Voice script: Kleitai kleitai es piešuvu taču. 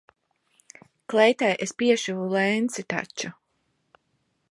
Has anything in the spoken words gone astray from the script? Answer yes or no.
yes